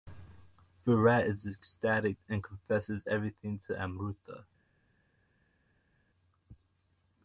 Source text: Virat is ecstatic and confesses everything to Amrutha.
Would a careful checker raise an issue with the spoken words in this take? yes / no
no